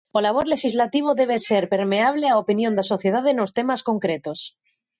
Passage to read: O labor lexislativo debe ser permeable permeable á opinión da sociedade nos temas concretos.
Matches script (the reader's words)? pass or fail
fail